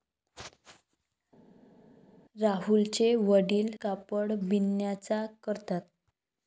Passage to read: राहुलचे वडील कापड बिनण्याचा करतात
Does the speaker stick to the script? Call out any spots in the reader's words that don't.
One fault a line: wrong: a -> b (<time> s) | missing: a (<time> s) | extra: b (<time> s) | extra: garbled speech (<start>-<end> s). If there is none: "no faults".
no faults